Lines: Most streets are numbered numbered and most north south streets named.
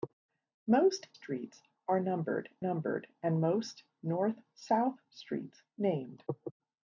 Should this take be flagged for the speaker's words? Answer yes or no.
no